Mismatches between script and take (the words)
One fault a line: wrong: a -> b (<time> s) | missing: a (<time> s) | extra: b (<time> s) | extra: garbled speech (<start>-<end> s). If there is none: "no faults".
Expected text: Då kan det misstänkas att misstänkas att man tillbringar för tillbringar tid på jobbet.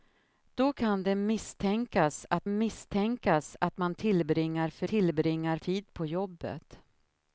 no faults